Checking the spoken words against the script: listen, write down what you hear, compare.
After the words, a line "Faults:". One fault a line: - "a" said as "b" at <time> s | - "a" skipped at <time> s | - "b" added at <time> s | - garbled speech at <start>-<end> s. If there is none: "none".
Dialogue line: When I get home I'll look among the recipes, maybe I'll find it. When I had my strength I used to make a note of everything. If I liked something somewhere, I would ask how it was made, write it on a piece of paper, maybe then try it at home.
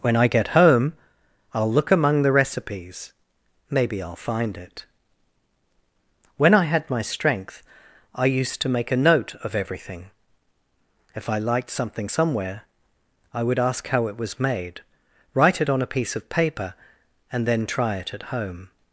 When I get home I'll look among the recipes, maybe I'll find it. When I had my strength I used to make a note of everything. If I liked something somewhere, I would ask how it was made, write it on a piece of paper, and then try it at home.
Faults:
- "maybe" said as "and" at 17.3 s